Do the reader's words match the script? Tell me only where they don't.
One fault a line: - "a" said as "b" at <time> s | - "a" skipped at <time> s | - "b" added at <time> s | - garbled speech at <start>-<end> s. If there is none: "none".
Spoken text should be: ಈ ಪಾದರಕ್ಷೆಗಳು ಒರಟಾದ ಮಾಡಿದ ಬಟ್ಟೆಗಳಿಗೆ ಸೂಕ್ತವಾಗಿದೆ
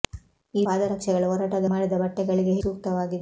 none